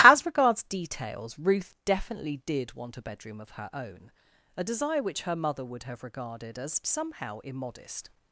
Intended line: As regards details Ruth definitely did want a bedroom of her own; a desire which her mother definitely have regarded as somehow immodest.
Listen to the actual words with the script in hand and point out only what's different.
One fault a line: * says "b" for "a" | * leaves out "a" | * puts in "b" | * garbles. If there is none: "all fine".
* says "would" for "definitely"